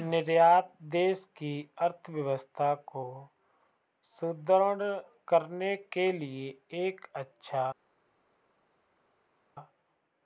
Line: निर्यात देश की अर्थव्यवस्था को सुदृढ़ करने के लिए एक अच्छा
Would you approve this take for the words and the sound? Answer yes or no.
yes